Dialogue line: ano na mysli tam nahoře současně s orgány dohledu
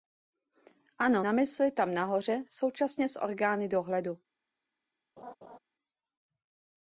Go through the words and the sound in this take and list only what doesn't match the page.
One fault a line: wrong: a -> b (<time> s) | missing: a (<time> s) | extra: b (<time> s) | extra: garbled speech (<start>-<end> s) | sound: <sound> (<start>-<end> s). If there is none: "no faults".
sound: laugh (5.2-5.6 s)